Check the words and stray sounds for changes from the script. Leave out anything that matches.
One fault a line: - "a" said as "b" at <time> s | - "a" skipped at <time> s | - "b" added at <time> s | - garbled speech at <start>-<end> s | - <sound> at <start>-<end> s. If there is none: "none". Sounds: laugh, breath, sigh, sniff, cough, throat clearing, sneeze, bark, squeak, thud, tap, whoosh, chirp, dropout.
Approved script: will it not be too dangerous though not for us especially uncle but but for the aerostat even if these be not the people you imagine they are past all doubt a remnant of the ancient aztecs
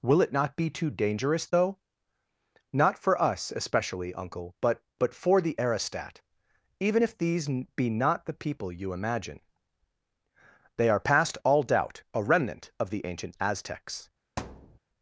- thud at 14.4-14.8 s